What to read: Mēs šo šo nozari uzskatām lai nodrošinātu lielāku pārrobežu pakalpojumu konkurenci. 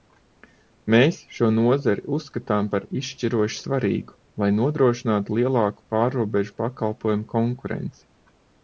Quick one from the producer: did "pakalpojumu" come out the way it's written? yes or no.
yes